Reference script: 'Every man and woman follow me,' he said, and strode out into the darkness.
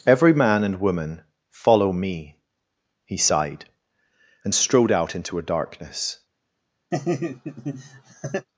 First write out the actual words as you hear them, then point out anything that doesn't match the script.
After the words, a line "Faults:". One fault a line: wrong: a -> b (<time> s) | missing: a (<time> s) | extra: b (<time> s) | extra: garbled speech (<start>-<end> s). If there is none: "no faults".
'Every man and woman follow me,' he sighed, and strode out into a darkness.
Faults:
wrong: said -> sighed (3.2 s)
wrong: the -> a (5.4 s)